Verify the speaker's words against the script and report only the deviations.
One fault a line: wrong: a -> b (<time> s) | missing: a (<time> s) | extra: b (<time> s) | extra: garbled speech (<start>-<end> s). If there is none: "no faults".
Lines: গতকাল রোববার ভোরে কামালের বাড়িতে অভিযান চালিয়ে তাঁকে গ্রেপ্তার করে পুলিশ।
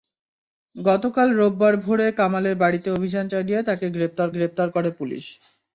extra: গ্রেপ্তার (4.3 s)